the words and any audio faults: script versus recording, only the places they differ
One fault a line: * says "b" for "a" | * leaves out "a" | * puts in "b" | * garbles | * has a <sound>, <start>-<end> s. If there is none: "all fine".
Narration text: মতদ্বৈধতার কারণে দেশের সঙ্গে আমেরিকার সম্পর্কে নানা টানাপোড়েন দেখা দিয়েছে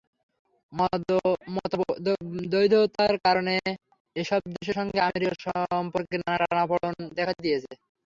* puts in "এসব"